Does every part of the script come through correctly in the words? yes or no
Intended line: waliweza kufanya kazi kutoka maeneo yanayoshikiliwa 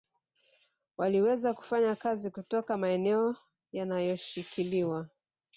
yes